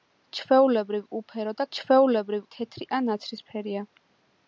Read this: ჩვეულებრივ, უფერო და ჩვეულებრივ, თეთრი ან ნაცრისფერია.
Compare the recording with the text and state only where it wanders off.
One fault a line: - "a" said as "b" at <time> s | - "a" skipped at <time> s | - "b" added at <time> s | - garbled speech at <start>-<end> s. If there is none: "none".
none